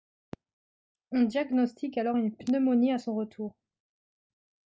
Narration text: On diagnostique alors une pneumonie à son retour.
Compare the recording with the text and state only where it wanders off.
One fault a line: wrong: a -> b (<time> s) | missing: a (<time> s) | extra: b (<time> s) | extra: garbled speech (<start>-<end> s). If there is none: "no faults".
no faults